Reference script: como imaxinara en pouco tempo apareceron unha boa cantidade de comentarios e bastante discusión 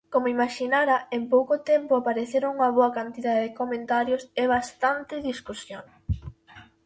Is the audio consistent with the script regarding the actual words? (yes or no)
yes